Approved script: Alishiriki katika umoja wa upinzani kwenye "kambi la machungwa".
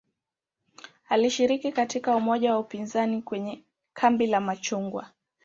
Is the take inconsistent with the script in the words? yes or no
no